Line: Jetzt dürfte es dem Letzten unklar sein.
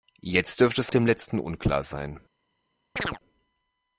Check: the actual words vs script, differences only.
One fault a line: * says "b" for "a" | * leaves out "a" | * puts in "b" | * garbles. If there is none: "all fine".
all fine